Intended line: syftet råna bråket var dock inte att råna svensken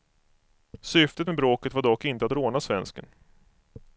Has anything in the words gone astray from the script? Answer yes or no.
yes